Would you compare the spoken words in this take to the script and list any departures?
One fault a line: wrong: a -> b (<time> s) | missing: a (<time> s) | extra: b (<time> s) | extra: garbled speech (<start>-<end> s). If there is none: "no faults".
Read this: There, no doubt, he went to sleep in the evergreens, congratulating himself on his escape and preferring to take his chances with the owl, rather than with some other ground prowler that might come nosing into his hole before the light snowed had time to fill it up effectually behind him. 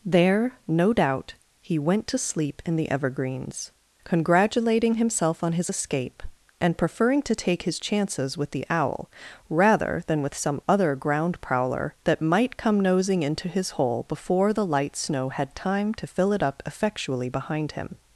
wrong: snowed -> snow (14.9 s)